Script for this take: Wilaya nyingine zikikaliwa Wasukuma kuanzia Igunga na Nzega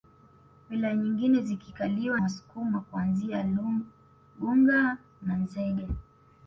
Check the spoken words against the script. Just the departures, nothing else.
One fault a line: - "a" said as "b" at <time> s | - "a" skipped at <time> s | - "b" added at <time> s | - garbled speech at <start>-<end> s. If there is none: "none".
none